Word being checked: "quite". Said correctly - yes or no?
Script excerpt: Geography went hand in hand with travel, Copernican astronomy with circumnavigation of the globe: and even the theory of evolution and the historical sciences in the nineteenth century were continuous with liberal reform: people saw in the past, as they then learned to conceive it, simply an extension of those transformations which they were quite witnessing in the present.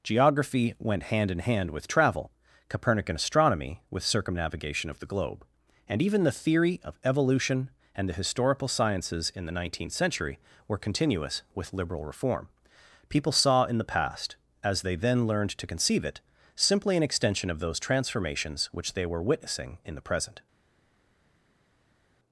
no